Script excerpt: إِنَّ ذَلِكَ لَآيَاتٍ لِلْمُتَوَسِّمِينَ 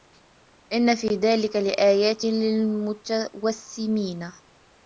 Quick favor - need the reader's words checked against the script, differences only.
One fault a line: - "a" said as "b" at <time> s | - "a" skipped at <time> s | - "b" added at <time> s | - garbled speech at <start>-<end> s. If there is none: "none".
- "فِي" added at 0.9 s